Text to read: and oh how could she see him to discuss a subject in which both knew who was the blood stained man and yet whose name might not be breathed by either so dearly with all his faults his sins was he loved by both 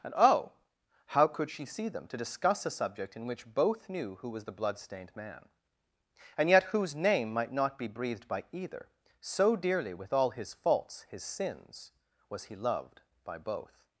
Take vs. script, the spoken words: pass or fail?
fail